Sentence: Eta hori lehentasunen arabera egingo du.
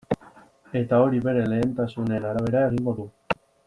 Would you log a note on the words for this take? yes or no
yes